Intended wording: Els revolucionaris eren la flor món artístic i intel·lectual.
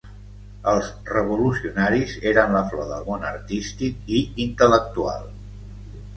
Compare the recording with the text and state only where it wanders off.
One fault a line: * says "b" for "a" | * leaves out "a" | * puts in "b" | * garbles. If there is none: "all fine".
* puts in "del"